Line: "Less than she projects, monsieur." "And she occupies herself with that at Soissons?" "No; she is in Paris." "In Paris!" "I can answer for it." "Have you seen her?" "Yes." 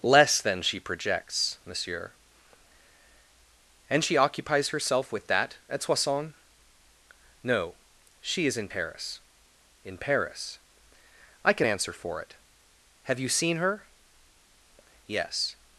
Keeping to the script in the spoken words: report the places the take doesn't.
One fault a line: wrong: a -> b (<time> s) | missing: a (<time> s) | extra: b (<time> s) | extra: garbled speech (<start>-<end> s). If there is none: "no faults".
no faults